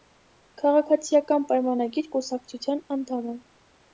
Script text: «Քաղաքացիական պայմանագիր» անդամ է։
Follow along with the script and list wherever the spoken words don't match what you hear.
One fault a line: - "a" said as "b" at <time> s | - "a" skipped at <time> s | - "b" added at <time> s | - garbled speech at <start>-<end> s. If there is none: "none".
- "կուսակցության" added at 2.2 s